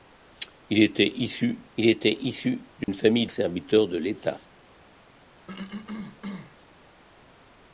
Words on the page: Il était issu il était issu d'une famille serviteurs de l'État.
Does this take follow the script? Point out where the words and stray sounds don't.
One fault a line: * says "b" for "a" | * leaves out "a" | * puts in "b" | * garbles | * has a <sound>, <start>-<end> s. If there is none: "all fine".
* has a dropout, 2.8-2.9 s
* has a cough, 5.5-6.6 s